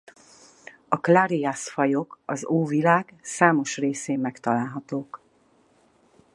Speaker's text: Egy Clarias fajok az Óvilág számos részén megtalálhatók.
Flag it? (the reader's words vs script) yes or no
yes